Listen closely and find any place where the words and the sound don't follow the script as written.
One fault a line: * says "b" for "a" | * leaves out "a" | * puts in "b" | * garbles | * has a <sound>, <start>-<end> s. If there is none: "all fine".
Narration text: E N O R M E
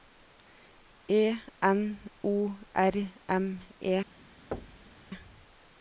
* has a thud, 4.5-5.0 s